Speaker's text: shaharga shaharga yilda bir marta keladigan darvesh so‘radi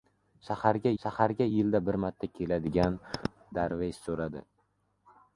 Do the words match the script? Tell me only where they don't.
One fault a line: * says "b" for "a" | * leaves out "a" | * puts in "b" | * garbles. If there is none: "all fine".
all fine